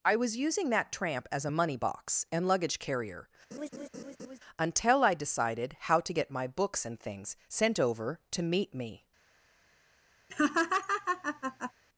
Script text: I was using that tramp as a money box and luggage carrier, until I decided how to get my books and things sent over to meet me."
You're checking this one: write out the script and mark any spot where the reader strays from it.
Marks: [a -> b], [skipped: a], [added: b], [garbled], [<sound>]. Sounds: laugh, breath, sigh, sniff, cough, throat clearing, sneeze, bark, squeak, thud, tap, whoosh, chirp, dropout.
I was using that tramp as a money box and luggage carrier, [laugh] until I decided how to get my books and things sent over to meet me." [laugh]